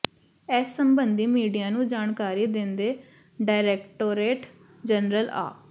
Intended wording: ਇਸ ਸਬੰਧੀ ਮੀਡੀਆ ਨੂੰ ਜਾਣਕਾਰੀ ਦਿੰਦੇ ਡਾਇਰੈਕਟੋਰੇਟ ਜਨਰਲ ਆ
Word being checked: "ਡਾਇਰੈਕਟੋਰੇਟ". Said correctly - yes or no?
yes